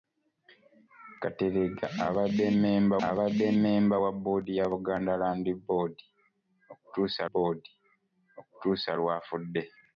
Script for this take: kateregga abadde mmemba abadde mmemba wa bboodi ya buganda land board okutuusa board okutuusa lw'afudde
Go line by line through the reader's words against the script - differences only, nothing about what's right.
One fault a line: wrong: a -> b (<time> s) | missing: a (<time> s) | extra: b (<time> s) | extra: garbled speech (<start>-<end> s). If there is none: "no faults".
no faults